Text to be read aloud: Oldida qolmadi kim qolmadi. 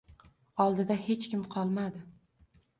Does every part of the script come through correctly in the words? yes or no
no